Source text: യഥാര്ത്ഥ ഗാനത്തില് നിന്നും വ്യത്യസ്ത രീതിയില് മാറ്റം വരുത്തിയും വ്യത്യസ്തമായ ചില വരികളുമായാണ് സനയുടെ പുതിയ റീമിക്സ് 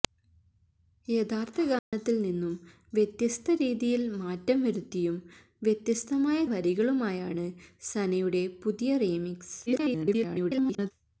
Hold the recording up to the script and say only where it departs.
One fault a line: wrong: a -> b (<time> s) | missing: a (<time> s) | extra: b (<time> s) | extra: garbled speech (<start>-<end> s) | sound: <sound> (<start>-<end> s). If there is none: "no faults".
sound: dropout (1.8-1.9 s)
missing: ചില (6.5 s)
extra: garbled speech (9.7-10.9 s)